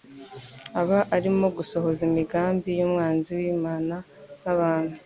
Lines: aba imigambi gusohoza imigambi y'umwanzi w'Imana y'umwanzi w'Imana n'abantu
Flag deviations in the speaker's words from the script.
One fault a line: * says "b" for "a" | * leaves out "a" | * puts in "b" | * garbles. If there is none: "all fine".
* says "arimo" for "imigambi"
* leaves out "y'umwanzi w'Imana"